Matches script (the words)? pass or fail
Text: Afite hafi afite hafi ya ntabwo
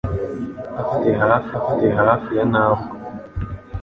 pass